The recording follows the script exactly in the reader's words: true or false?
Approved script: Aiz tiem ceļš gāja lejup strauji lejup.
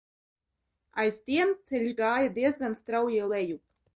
false